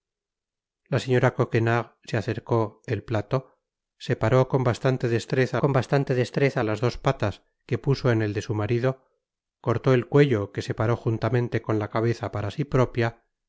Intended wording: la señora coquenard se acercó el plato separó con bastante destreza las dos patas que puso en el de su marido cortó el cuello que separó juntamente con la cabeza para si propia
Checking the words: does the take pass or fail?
fail